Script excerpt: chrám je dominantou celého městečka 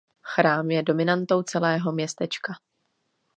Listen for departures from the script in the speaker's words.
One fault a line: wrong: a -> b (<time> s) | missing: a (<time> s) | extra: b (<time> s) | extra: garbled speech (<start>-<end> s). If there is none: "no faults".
no faults